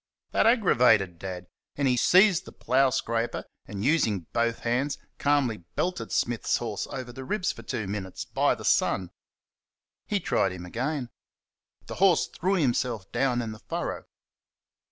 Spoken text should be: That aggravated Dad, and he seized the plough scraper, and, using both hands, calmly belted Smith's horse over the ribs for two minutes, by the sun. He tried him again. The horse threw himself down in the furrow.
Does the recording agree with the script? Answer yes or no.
yes